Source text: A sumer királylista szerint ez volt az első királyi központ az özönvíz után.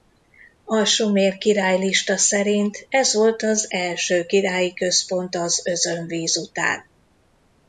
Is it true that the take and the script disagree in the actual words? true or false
false